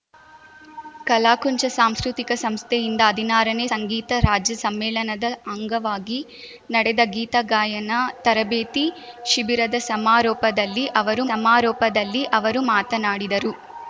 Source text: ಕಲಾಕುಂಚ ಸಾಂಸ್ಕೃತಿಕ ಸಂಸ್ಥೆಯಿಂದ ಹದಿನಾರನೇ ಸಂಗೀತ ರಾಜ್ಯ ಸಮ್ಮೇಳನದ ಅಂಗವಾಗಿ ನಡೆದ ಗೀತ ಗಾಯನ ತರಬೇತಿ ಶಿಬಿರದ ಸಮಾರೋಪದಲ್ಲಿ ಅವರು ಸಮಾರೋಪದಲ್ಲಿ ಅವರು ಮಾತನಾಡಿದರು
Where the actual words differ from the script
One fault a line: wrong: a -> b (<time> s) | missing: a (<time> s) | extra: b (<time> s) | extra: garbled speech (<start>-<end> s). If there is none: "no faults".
no faults